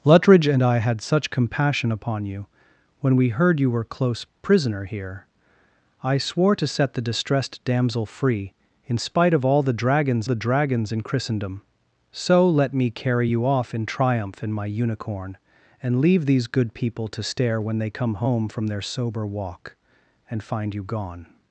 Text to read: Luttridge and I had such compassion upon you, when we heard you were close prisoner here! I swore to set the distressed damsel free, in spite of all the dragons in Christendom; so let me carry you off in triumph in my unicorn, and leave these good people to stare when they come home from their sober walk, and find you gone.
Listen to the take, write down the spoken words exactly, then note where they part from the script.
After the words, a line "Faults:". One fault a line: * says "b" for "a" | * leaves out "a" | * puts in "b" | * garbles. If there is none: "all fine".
Luttridge and I had such compassion upon you, when we heard you were close prisoner here! I swore to set the distressed damsel free, in spite of all the dragons the dragons in Christendom; so let me carry you off in triumph in my unicorn, and leave these good people to stare when they come home from their sober walk, and find you gone.
Faults:
* puts in "the dragons"